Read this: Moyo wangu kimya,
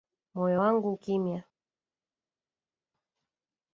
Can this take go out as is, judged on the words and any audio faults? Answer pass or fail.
pass